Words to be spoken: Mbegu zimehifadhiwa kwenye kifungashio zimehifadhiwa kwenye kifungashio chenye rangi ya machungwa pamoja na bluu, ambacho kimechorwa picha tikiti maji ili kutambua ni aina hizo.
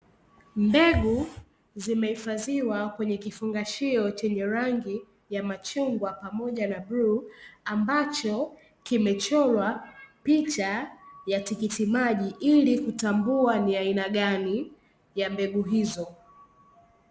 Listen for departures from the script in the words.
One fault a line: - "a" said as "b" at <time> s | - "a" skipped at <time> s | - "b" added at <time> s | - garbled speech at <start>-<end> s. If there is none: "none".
- "zimehifadhiwa kwenye kifungashio" skipped at 4.1 s
- "ya" added at 11.3 s
- "gani ya mbegu" added at 14.1 s